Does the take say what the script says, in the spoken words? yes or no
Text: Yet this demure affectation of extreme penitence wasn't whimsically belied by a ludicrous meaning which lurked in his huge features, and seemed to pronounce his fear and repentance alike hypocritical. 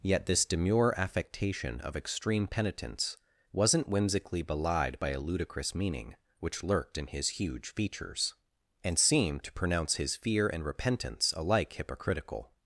yes